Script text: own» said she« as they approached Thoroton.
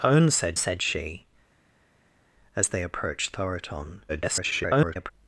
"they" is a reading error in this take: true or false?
false